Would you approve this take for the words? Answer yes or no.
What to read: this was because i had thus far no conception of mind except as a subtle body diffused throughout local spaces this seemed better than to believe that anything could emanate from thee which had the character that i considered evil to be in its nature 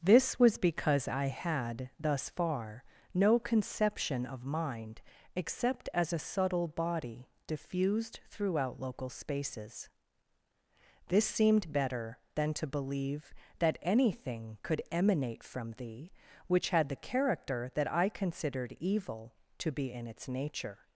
yes